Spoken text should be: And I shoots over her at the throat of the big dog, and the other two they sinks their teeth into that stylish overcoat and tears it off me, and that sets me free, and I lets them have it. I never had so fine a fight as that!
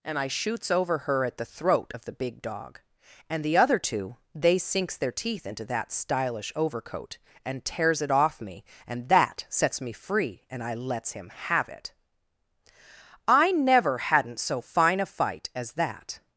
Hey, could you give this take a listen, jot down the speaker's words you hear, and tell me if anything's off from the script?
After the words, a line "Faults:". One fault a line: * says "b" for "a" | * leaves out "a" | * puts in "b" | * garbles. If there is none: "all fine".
And I shoots over her at the throat of the big dog, and the other two they sinks their teeth into that stylish overcoat and tears it off me, and that sets me free, and I lets him have it. I never hadn't so fine a fight as that!
Faults:
* says "him" for "them"
* says "hadn't" for "had"